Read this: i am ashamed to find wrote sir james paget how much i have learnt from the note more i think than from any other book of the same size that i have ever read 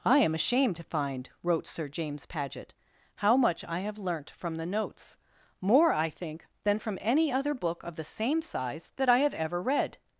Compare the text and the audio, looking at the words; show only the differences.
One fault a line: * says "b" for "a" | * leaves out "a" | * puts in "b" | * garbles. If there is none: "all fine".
* says "notes" for "note"